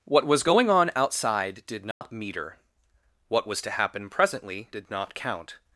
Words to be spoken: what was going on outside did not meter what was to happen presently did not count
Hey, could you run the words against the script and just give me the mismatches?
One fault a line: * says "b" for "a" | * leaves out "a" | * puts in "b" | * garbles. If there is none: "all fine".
all fine